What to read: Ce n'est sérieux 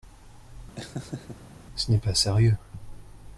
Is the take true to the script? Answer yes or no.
no